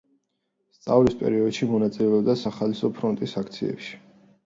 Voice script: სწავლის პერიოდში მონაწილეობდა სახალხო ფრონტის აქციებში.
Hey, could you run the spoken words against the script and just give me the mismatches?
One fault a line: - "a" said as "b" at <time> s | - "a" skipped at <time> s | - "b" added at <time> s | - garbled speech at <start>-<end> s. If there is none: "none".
none